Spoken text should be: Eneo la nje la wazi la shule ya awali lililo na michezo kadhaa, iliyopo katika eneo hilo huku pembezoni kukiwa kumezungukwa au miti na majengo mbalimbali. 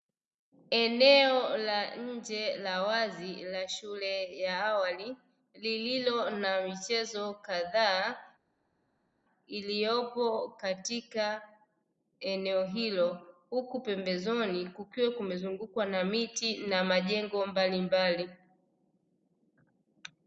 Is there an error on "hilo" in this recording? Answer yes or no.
no